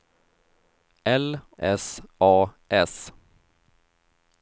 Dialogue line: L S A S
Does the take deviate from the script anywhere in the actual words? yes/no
no